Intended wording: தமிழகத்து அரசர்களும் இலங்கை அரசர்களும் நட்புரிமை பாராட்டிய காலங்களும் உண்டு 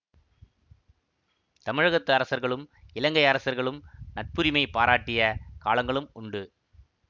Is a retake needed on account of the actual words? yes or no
no